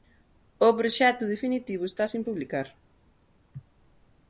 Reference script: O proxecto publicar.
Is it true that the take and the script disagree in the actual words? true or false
true